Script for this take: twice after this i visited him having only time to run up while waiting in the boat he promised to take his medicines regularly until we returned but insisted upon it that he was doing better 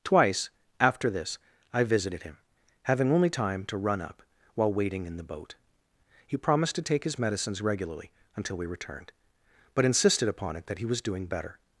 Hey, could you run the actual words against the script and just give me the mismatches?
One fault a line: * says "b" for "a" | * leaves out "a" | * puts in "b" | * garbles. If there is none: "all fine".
all fine